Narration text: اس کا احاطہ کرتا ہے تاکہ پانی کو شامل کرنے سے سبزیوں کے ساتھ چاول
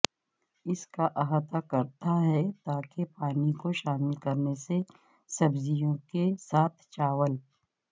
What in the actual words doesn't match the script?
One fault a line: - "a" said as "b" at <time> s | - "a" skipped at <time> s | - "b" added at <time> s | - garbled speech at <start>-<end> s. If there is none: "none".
none